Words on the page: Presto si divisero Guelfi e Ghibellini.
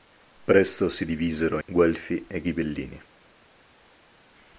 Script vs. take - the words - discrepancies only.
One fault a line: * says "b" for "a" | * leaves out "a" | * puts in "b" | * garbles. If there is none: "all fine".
all fine